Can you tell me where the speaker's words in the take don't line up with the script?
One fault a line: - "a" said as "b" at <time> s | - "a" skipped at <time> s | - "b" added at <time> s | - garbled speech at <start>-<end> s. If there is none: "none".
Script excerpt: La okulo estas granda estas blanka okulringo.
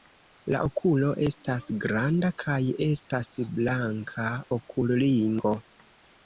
- "kaj" added at 2.4 s